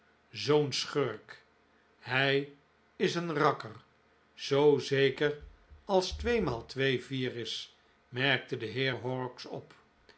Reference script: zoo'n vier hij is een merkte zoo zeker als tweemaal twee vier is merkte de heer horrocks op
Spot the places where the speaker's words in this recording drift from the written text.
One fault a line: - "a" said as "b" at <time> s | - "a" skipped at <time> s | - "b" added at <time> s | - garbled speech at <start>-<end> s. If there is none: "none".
- "vier" said as "schurk" at 0.7 s
- "merkte" said as "rakker" at 3.3 s